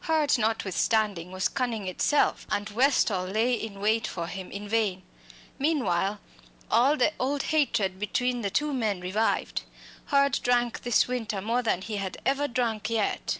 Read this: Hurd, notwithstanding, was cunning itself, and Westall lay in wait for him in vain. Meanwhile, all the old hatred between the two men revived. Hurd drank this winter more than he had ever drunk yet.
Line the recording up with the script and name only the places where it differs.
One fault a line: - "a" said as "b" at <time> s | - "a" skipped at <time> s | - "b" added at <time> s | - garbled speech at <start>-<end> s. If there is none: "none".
none